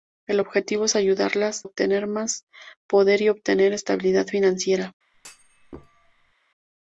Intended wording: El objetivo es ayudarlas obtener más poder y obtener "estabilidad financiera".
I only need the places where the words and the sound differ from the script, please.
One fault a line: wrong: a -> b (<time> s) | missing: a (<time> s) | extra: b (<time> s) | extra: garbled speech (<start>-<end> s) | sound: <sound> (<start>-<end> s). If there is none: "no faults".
sound: thud (5.1-6.3 s)